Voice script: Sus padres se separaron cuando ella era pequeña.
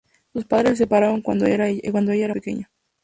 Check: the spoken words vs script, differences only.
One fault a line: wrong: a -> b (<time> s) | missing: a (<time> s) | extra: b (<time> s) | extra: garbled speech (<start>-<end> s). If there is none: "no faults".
no faults